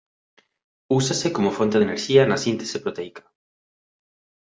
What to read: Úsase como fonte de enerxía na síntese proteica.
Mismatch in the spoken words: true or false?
false